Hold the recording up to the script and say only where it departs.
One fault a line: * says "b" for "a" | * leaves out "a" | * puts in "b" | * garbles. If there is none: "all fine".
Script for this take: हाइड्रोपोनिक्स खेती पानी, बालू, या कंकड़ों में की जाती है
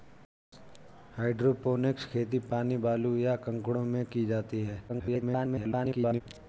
* garbles